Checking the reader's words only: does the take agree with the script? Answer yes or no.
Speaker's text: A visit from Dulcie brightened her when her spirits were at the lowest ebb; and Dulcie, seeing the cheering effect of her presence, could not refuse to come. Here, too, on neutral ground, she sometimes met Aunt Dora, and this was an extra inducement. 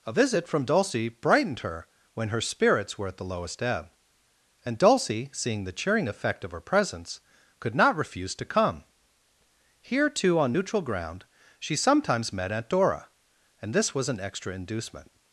yes